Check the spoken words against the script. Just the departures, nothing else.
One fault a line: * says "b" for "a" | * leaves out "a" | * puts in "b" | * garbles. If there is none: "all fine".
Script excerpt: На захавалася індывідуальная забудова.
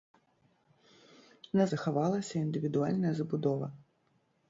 all fine